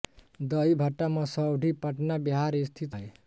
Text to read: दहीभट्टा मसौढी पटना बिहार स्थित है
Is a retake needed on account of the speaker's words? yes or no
no